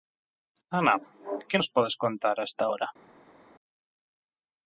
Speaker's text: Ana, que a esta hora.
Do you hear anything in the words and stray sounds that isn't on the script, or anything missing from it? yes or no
yes